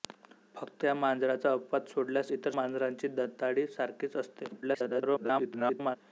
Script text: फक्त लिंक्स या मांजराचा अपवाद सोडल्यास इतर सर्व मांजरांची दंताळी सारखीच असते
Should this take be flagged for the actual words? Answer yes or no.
yes